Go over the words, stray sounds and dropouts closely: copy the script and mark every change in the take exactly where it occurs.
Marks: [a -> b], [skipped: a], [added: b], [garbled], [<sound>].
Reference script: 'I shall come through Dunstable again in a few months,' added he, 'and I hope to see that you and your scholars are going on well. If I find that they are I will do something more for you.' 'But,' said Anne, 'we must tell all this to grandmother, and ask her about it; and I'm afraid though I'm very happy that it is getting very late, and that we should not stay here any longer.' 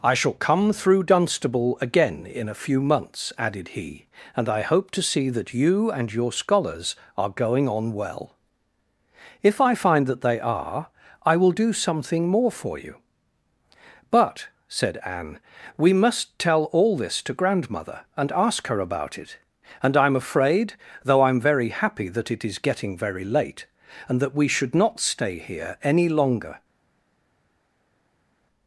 'I shall come through Dunstable again in a few months,' added he, 'and I hope to see that you and your scholars are going on well. If I find that they are I will do something more for you.' 'But,' said Anne, 'we must tell all this to grandmother, and ask her about it; and I'm afraid though I'm very happy that it is getting very late, and that we should not stay here any longer.'